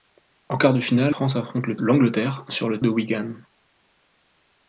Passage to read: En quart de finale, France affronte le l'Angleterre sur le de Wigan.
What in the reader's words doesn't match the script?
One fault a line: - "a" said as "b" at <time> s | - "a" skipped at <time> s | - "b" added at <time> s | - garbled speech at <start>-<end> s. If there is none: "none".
none